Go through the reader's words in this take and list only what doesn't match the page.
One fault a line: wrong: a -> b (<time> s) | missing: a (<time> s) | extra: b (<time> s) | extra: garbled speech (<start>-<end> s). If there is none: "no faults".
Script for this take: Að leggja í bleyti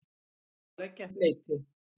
no faults